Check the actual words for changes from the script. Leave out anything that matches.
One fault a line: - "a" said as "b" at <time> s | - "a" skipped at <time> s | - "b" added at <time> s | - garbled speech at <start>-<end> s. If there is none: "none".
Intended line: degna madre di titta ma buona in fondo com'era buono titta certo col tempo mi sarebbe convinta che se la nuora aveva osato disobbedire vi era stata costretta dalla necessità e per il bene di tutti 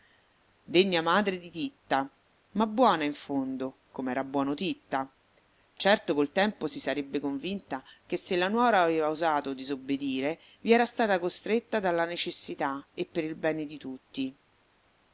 - "mi" said as "si" at 6.7 s